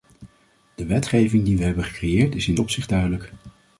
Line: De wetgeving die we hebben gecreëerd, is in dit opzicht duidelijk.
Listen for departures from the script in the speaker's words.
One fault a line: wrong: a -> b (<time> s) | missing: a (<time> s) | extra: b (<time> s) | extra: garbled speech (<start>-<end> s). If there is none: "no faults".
missing: dit (2.6 s)